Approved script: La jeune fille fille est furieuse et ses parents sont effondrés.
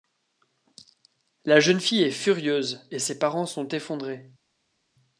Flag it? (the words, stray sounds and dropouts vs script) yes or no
yes